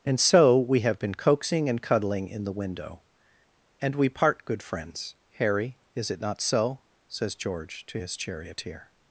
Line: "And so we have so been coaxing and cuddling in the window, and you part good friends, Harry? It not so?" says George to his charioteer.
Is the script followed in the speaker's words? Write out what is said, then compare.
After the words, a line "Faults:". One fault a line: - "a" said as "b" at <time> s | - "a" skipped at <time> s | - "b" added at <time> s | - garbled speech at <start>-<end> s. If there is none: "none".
"And so we have been coaxing and cuddling in the window, and we part good friends, Harry? Is it not so?" says George to his charioteer.
Faults:
- "so" skipped at 1.0 s
- "you" said as "we" at 4.0 s
- "Is" added at 6.0 s